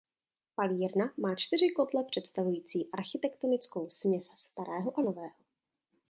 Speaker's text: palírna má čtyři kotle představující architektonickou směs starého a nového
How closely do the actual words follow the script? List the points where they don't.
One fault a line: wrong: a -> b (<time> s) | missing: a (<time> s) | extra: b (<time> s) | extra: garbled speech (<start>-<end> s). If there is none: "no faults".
no faults